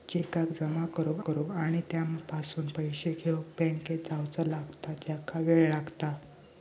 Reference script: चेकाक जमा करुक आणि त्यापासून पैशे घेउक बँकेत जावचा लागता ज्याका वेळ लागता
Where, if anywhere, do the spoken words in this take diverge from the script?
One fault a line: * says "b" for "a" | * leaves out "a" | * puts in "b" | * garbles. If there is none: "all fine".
* puts in "करुक"